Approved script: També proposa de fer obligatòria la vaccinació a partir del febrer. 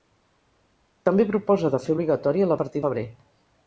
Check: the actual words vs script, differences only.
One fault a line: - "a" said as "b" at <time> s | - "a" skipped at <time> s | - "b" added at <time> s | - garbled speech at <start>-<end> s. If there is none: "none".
- "vaccinació" skipped at 2.6 s
- "del" skipped at 2.8 s